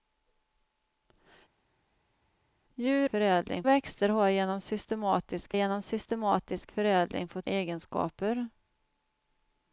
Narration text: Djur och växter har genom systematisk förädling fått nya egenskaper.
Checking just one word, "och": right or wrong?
wrong